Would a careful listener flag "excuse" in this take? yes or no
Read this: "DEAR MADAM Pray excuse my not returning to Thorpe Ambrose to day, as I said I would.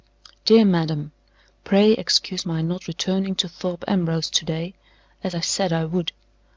no